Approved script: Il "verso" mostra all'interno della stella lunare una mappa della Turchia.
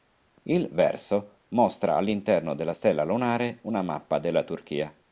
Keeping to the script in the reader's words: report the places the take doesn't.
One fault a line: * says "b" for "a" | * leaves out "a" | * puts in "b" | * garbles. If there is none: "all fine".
all fine